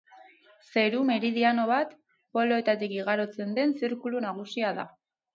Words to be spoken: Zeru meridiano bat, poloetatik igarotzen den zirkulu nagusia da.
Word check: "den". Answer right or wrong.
right